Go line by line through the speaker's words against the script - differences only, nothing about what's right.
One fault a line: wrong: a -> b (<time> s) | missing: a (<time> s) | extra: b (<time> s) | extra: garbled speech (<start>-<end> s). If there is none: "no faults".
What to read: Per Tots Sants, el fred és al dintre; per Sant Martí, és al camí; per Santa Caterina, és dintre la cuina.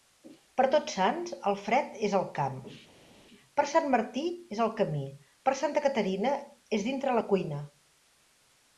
wrong: dintre -> camp (2.4 s)